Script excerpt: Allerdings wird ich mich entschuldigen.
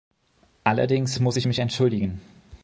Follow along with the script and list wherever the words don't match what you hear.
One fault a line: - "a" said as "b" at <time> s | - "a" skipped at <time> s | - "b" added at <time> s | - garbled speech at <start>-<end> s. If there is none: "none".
- "wird" said as "muss" at 1.2 s